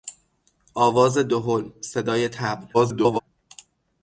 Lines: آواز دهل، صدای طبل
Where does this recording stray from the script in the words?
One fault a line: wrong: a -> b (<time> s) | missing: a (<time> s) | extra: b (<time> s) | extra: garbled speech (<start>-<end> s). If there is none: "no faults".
extra: garbled speech (2.7-3.2 s)